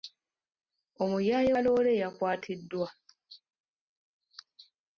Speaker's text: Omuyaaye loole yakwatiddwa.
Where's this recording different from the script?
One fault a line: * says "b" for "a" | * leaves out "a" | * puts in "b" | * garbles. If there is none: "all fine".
all fine